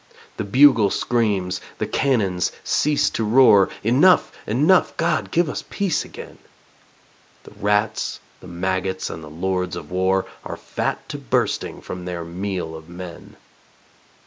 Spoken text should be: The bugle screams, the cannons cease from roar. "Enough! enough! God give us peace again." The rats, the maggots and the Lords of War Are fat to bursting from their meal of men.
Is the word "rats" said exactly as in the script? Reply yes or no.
yes